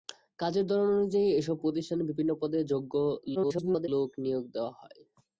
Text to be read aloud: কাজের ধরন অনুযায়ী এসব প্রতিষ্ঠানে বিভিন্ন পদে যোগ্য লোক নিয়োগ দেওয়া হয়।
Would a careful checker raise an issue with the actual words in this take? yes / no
yes